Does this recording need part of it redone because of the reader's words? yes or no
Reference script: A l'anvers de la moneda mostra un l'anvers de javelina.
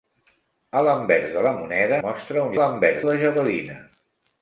no